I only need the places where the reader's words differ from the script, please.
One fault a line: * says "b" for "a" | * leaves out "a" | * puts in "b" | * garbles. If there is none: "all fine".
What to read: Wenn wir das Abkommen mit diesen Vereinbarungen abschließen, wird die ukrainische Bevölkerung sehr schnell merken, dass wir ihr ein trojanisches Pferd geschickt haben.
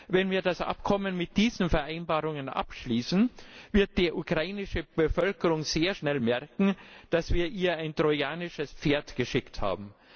all fine